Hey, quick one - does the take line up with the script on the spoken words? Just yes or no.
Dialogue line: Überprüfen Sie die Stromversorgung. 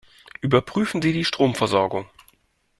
yes